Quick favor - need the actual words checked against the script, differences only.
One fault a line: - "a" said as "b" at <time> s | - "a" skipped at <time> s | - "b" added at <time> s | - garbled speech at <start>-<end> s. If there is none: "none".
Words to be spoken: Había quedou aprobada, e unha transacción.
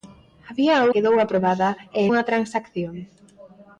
none